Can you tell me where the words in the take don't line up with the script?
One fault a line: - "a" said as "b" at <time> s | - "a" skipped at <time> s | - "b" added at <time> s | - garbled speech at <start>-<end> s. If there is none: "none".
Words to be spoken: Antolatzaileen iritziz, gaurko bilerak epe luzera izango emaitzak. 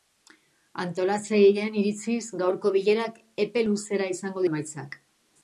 none